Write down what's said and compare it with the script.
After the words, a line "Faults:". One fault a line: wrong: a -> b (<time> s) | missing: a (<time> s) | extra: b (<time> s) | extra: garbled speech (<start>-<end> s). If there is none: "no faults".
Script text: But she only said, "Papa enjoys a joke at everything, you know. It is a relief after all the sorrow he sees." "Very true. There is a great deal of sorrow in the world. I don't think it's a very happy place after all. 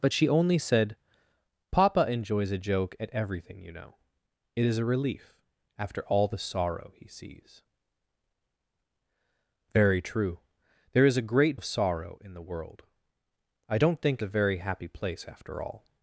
But she only said, "Papa enjoys a joke at everything, you know. It is a relief after all the sorrow he sees." "Very true. There is a great of sorrow in the world. I don't think a very happy place after all.
Faults:
missing: deal (11.6 s)
missing: it's (14.2 s)